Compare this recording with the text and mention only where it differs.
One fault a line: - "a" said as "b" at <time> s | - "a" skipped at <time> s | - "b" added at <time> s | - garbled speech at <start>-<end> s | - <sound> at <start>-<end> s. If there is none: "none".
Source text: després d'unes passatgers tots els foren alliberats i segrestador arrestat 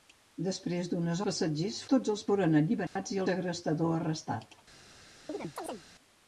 - dropout at 2.9-3.0 s
- chirp at 5.3-5.8 s